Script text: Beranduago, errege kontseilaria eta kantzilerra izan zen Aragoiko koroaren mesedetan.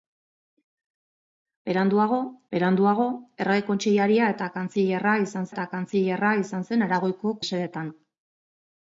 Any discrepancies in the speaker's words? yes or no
yes